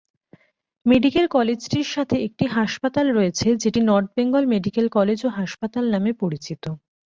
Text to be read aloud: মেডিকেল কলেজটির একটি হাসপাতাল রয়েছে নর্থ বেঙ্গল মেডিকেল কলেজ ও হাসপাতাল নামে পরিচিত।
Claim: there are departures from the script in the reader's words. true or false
true